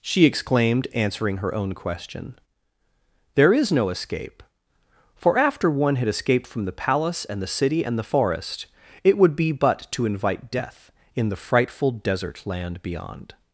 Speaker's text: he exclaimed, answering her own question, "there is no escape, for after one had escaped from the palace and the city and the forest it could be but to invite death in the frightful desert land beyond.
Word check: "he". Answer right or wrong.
wrong